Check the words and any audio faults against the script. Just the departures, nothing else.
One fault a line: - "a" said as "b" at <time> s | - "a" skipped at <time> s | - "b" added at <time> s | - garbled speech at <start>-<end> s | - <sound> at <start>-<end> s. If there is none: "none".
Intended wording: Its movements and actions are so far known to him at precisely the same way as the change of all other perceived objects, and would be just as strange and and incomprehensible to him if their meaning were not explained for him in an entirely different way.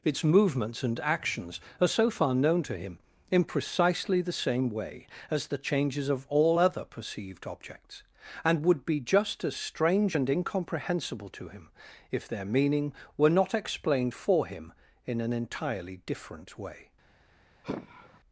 - "at" said as "in" at 3.3 s
- "change" said as "changes" at 5.6 s
- "and" skipped at 10.3 s
- sigh at 17.6-18.2 s